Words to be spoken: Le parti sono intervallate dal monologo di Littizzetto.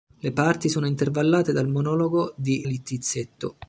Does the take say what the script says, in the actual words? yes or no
yes